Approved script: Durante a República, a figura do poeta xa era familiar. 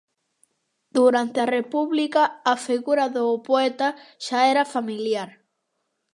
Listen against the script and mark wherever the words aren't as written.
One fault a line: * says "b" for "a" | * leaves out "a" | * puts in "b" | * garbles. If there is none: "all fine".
all fine